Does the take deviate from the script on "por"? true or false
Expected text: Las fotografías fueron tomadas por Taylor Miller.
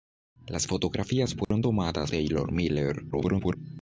true